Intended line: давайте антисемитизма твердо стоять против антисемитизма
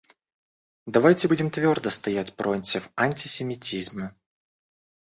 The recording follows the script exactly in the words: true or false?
false